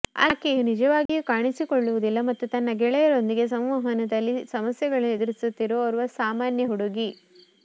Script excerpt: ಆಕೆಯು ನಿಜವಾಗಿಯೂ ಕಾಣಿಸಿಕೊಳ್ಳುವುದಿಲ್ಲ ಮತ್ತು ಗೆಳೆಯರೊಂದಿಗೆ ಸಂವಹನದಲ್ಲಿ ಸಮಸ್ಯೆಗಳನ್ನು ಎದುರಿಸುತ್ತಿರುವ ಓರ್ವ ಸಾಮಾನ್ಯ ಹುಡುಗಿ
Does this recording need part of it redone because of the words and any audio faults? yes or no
yes